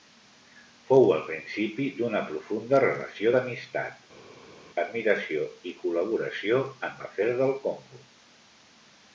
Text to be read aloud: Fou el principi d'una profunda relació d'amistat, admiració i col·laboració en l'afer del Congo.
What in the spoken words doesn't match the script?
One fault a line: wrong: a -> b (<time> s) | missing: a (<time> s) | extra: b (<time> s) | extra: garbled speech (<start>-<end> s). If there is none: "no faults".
no faults